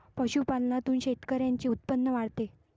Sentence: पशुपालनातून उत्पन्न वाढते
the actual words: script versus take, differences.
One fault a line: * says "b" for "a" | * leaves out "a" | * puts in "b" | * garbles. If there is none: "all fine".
* puts in "शेतकऱ्यांचे"